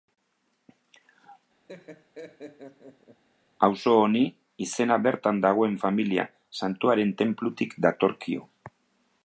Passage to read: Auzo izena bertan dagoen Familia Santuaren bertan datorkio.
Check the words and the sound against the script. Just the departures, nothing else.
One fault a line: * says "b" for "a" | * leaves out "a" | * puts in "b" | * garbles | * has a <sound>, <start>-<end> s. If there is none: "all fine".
* has a laugh, 1.7-3.2 s
* puts in "honi"
* says "tenplutik" for "bertan"